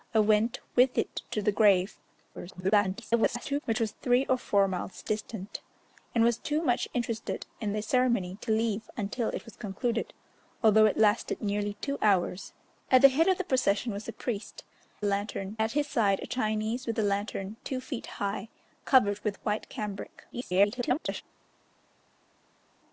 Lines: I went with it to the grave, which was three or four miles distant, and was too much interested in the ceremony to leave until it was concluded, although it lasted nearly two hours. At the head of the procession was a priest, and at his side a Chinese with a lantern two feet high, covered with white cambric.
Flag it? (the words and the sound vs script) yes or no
yes